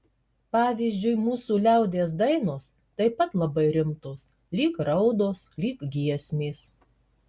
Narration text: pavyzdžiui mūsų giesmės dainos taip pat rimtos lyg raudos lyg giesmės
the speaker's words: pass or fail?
fail